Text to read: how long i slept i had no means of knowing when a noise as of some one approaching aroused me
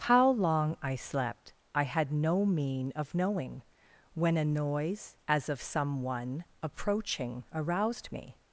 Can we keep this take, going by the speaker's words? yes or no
no